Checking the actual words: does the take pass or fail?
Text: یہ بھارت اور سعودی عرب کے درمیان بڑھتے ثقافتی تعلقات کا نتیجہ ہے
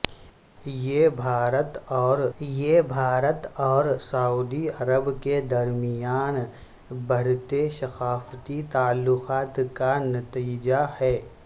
fail